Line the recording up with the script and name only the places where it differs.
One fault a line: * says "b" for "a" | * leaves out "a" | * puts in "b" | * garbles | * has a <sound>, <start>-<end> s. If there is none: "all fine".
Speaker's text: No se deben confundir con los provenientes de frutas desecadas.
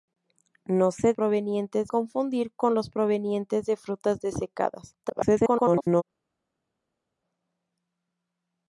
* says "provenientes" for "deben"
* garbles